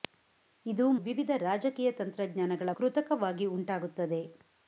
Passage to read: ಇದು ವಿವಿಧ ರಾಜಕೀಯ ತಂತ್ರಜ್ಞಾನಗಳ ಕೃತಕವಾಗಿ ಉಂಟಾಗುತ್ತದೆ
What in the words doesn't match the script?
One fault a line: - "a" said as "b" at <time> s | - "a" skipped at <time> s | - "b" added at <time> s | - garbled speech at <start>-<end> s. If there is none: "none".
none